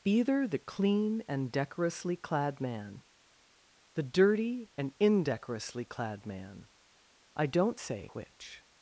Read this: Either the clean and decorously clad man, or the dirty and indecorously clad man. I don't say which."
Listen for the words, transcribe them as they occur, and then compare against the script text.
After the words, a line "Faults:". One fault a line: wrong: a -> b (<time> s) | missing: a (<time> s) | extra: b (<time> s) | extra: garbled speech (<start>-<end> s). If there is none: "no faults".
Either the clean and decorously clad man, the dirty and indecorously clad man. I don't say which."
Faults:
missing: or (3.0 s)